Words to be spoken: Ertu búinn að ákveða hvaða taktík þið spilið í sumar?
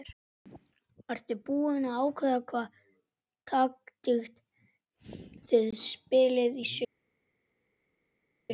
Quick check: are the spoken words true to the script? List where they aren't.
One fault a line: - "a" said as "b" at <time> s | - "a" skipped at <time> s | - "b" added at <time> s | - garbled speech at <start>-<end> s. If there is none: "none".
none